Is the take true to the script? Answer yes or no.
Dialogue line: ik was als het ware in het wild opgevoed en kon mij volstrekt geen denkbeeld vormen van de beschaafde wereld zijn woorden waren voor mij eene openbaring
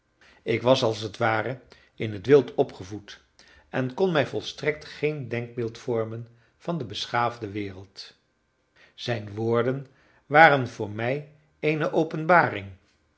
yes